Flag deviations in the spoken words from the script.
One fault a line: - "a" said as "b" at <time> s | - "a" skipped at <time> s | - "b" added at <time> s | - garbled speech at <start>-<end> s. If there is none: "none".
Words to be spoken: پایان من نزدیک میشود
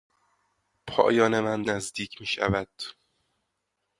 none